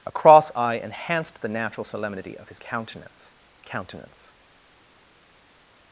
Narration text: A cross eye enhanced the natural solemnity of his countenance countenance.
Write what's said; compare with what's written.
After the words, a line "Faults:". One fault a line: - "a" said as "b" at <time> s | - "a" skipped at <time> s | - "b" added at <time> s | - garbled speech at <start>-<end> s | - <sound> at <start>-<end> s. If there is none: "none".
A cross eye enhanced the natural solemnity of his countenance countenance.
Faults:
none